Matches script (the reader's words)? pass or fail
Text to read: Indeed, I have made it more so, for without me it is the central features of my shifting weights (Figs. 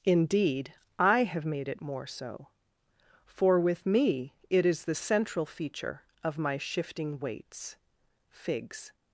fail